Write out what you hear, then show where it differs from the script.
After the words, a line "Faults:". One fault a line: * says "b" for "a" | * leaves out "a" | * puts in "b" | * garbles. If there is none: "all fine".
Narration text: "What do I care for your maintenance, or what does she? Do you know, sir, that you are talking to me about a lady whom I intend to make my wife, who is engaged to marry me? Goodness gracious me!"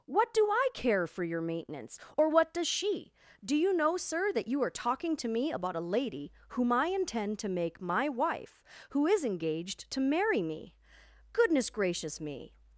"What do I care for your maintenance, or what does she? Do you know, sir, that you are talking to me about a lady whom I intend to make my wife, who is engaged to marry me? Goodness gracious me!"
Faults:
all fine